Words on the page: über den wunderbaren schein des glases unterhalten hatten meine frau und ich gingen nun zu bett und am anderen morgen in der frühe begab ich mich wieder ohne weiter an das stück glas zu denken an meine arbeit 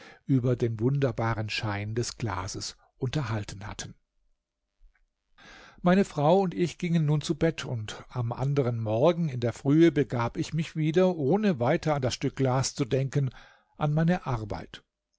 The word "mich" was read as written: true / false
true